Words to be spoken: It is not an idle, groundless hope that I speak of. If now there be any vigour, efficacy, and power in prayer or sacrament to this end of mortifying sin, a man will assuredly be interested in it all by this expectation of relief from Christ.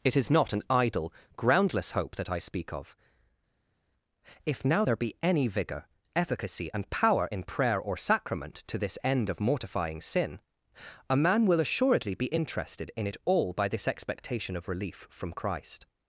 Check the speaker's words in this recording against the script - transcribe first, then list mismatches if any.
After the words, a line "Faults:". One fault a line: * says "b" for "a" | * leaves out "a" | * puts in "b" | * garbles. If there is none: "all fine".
It is not an idle, groundless hope that I speak of. If now there be any vigour, efficacy, and power in prayer or sacrament to this end of mortifying sin, a man will assuredly be interested in it all by this expectation of relief from Christ.
Faults:
all fine